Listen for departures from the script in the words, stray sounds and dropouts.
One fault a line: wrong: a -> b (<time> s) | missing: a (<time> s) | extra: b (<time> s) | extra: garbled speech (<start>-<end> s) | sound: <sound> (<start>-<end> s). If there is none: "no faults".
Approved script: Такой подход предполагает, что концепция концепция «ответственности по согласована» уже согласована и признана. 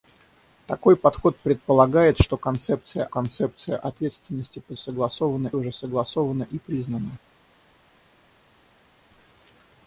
no faults